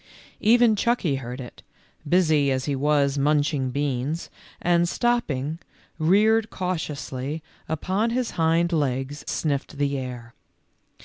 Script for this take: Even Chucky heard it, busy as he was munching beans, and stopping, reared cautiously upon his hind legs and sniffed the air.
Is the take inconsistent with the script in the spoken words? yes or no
yes